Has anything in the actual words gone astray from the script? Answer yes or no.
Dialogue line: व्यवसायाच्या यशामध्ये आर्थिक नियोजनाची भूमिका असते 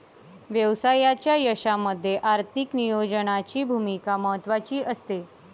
yes